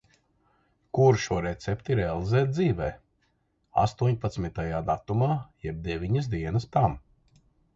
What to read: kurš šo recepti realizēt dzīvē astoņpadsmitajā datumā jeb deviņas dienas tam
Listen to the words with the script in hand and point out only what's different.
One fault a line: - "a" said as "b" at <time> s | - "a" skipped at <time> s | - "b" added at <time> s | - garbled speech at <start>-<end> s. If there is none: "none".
none